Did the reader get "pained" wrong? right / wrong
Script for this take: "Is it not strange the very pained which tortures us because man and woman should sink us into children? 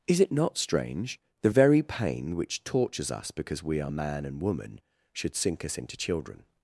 wrong